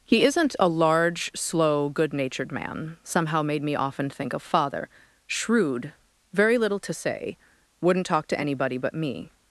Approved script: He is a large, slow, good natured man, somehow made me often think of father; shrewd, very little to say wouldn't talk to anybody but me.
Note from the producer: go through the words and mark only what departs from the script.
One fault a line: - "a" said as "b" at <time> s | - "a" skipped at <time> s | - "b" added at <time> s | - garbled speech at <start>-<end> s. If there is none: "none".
- "is" said as "isn't" at 0.2 s